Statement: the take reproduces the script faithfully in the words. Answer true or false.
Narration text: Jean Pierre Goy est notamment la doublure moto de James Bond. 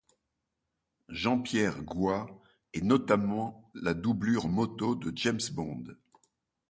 true